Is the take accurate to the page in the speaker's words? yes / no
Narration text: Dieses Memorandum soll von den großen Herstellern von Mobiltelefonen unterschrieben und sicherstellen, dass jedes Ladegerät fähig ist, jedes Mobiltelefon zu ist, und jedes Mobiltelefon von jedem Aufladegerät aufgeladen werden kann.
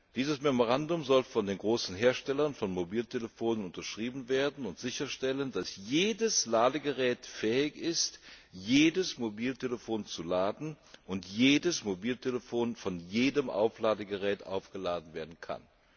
no